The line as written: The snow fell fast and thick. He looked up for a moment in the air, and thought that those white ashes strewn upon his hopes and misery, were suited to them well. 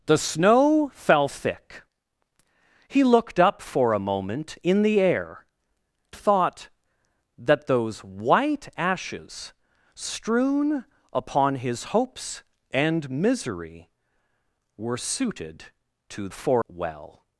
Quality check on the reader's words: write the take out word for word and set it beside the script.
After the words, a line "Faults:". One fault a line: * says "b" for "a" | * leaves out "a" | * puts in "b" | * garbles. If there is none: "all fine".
The snow fell thick. He looked up for a moment in the air, thought that those white ashes strewn upon his hopes and misery, were suited to for well.
Faults:
* leaves out "fast and"
* leaves out "and"
* says "for" for "them"